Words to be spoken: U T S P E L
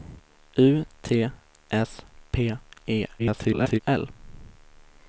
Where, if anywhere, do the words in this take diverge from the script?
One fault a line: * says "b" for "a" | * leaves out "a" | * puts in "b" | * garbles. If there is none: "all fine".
* garbles